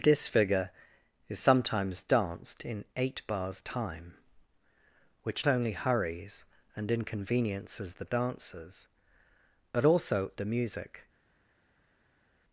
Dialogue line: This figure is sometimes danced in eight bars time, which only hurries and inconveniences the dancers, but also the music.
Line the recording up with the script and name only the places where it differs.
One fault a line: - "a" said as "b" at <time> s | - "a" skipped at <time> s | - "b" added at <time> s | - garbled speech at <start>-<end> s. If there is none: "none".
none